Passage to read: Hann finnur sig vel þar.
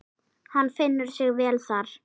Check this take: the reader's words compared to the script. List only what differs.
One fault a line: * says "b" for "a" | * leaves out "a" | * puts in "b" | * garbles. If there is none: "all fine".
all fine